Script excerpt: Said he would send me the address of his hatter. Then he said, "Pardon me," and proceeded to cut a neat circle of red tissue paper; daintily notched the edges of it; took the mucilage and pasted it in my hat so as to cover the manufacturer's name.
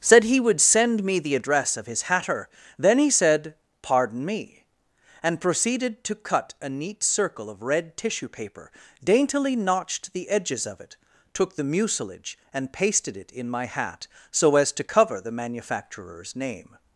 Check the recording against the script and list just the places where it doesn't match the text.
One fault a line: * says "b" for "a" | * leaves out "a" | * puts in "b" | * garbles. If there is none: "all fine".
all fine